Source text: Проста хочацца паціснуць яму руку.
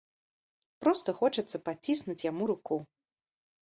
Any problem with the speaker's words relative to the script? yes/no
no